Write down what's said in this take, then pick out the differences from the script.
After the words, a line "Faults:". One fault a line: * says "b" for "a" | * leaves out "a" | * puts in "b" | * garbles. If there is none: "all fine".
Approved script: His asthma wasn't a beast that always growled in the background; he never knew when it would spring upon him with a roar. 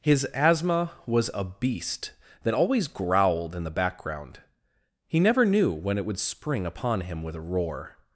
His asthma was a beast that always growled in the background; he never knew when it would spring upon him with a roar.
Faults:
* says "was" for "wasn't"